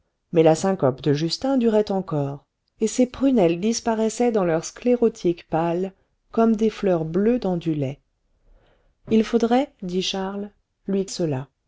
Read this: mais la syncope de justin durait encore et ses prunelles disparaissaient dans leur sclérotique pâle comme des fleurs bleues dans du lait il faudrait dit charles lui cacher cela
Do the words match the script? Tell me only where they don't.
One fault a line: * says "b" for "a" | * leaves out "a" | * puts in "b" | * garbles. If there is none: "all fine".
* leaves out "cacher"